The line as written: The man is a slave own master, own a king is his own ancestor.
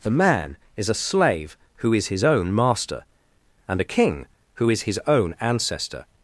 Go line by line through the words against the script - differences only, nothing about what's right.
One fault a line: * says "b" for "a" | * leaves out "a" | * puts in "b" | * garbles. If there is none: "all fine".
* puts in "who is his"
* says "and" for "own"
* puts in "who"